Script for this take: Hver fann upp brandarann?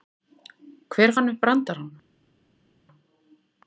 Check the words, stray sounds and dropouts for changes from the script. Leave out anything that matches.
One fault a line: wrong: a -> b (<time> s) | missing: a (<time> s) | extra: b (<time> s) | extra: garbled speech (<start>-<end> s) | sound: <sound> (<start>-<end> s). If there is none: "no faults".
no faults